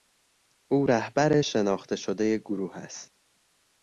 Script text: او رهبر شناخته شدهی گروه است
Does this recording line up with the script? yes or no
yes